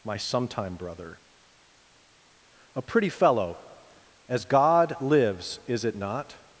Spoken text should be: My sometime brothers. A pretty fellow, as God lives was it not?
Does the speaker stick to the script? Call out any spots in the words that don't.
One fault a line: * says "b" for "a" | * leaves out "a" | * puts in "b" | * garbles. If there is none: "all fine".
* says "brother" for "brothers"
* says "is" for "was"